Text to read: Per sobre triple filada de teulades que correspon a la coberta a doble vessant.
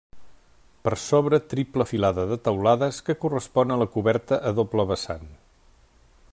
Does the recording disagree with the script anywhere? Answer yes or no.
no